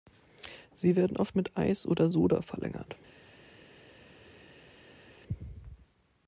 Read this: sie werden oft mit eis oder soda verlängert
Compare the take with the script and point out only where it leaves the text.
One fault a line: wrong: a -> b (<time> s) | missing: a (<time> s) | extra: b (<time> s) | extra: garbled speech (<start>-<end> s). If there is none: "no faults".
no faults